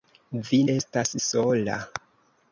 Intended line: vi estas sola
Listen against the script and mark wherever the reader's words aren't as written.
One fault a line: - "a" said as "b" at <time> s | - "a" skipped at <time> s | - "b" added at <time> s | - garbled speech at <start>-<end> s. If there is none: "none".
none